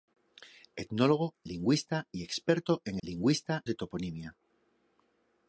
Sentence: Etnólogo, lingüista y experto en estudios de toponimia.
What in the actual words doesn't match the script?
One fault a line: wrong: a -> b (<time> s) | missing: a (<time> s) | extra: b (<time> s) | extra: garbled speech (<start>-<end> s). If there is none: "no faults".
wrong: estudios -> lingüista (3.0 s)